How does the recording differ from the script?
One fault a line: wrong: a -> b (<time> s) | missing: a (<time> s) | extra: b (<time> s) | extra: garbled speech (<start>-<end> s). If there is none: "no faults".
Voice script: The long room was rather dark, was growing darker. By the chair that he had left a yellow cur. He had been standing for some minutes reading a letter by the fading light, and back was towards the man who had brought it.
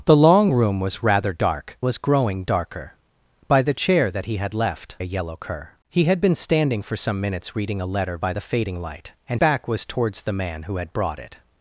no faults